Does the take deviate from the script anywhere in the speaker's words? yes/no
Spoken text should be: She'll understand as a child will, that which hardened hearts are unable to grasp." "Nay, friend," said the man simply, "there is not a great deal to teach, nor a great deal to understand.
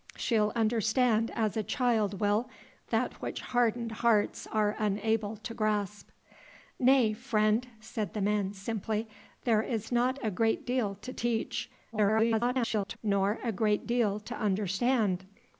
yes